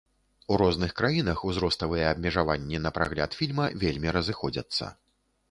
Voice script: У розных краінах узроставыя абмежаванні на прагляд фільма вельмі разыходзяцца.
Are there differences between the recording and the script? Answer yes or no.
no